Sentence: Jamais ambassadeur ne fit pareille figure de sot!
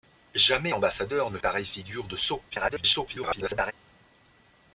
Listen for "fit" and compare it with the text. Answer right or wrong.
wrong